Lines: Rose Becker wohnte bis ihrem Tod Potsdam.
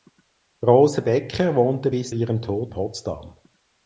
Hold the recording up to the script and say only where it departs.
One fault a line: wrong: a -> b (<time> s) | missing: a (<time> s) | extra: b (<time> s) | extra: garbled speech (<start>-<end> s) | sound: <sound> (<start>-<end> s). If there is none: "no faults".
no faults